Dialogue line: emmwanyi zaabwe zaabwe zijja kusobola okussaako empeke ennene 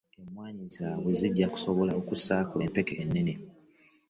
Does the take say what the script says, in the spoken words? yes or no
no